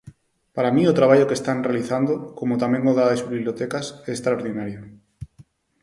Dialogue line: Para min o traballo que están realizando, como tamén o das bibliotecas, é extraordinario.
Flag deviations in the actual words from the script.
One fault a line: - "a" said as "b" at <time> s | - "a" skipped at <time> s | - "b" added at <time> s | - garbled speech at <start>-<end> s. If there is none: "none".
none